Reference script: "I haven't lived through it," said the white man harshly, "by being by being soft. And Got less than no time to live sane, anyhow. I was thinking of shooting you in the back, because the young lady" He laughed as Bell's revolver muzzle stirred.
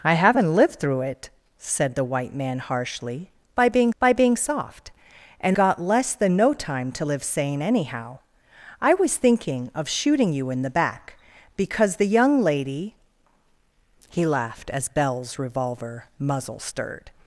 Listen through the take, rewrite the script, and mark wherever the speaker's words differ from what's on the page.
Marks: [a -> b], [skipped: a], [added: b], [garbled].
"I haven't lived through it," said the white man harshly, "by being by being soft. And Got less than no time to live sane, anyhow. I was thinking of shooting you in the back, because the young lady" He laughed as Bell's revolver muzzle stirred.